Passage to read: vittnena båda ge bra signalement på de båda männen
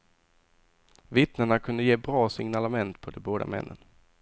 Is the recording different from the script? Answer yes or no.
yes